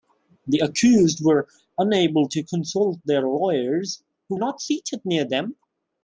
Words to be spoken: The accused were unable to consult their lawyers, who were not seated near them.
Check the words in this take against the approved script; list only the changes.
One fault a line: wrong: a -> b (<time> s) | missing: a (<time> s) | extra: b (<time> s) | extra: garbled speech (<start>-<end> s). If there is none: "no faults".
missing: were (4.4 s)